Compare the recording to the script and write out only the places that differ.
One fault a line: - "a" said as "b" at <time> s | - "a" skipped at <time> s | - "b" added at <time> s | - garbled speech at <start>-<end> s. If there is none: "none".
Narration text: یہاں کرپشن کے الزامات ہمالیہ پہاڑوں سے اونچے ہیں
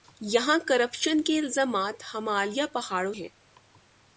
- "سے اونچے" skipped at 3.1 s